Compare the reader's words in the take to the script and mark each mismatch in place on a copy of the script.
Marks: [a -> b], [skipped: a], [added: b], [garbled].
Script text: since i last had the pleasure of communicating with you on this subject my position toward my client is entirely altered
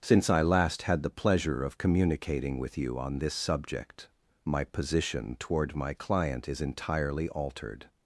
since i last had the pleasure of communicating with you on this subject my position toward my client is entirely altered